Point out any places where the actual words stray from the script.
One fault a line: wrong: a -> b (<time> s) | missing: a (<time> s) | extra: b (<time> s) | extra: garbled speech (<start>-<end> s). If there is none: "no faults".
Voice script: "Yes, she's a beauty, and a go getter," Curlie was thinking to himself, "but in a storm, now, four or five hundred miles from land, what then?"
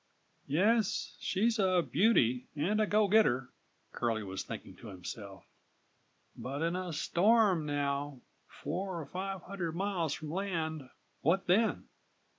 no faults